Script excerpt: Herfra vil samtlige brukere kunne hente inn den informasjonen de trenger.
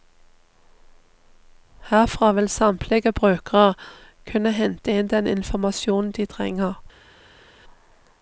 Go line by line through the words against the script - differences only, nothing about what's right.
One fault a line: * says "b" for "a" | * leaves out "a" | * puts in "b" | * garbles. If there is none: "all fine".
all fine